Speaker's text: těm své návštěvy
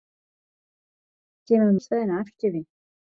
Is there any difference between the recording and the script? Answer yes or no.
no